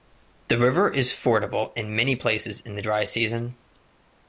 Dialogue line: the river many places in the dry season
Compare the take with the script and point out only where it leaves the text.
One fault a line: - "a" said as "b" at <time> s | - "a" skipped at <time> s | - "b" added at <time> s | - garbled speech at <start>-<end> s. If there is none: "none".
- "is fordable in" added at 0.9 s